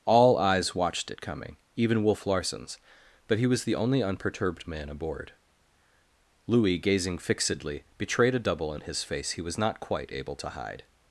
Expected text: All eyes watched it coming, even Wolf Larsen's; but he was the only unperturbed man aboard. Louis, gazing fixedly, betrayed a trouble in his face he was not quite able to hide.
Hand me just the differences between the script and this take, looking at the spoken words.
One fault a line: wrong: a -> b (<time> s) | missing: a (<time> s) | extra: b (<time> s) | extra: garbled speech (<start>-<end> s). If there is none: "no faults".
wrong: trouble -> double (8.4 s)